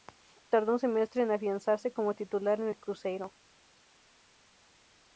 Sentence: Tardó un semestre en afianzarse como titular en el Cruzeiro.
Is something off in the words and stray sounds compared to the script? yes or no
no